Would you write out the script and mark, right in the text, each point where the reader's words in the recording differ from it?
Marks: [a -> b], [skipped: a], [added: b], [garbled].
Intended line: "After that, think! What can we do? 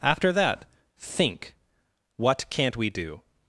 "After that, think! What [can -> can't] we do?